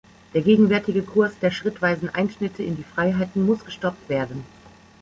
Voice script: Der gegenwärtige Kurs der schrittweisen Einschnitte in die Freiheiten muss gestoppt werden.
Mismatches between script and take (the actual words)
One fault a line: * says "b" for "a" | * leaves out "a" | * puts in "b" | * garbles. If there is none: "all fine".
all fine